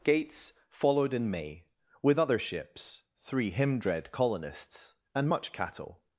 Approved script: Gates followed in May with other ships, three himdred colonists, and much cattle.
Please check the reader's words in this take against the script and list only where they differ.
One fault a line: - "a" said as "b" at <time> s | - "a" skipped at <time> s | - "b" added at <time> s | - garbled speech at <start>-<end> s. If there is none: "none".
none